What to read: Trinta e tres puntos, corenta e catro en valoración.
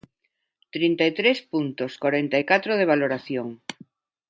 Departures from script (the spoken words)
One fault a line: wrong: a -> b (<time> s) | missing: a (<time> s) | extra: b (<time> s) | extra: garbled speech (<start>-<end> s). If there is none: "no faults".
wrong: en -> de (2.8 s)